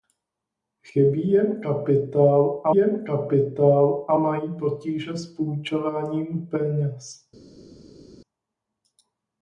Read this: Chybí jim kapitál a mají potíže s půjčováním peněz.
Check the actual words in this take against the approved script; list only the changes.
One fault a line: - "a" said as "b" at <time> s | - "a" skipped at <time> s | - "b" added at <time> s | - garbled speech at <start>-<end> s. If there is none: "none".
- "jim kapitál a" added at 2.7 s